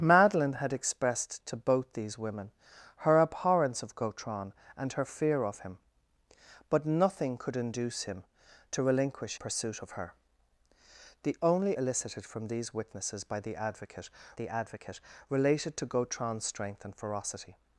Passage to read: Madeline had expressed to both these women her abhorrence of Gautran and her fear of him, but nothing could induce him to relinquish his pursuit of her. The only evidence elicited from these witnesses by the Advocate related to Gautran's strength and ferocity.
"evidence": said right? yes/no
no